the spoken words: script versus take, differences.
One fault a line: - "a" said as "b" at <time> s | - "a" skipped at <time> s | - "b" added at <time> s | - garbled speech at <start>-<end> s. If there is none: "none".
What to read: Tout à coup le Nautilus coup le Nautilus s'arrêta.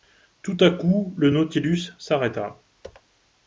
- "coup le Nautilus" skipped at 1.9 s